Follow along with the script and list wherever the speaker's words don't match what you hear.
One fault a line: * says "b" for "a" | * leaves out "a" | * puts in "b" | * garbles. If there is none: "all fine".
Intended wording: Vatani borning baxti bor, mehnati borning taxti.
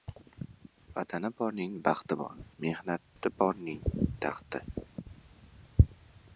all fine